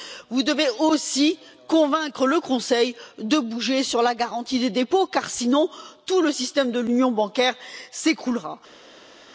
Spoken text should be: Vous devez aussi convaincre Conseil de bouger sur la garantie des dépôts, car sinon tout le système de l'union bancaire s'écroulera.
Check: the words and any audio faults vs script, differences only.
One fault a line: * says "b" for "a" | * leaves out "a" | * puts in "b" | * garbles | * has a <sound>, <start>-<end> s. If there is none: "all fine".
* puts in "le"